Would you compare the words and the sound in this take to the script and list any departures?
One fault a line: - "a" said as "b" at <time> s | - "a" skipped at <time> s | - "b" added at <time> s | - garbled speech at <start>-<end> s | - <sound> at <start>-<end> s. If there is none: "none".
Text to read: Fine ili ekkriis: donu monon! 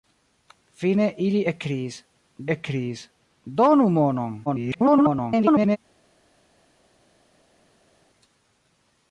- "ekkriis" added at 2.5 s
- garbled speech at 4.5-5.8 s